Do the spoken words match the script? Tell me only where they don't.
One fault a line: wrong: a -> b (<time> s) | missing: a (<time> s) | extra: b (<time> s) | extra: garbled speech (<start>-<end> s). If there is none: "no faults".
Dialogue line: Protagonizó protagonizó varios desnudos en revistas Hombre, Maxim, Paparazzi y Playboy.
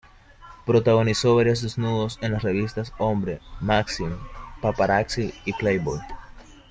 missing: protagonizó (1.4 s)
extra: las (2.3 s)